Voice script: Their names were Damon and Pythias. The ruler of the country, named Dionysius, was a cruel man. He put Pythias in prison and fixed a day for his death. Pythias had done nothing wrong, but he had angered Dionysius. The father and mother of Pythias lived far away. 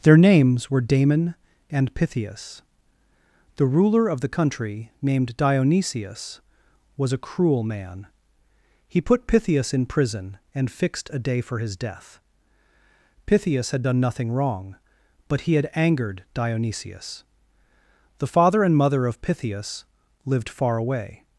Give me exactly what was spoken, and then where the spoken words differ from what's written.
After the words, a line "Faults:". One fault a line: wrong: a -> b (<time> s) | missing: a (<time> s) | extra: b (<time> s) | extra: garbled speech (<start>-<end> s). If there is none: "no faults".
Their names were Damon and Pythias. The ruler of the country, named Dionysius, was a cruel man. He put Pythias in prison and fixed a day for his death. Pythias had done nothing wrong, but he had angered Dionysius. The father and mother of Pythias lived far away.
Faults:
no faults